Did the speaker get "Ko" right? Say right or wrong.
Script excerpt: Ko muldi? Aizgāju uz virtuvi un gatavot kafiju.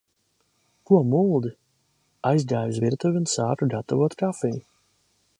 right